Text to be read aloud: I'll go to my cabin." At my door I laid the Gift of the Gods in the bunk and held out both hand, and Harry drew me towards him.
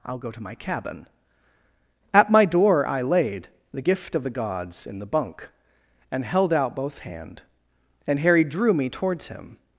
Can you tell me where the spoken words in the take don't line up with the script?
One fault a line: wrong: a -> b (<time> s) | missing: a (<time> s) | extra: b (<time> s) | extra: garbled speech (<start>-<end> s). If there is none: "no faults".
no faults